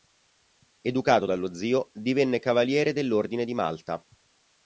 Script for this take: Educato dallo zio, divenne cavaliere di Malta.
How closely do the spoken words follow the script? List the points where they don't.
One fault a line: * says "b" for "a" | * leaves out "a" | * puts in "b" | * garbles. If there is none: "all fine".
* puts in "dell'Ordine"